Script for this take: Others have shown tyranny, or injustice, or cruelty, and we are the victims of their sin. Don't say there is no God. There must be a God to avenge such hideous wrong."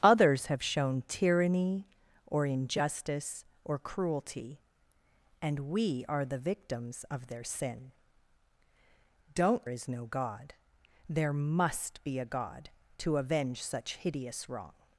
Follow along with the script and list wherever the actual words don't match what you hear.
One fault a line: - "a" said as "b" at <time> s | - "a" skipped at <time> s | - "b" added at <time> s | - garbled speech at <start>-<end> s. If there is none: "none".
- "say there" skipped at 9.7 s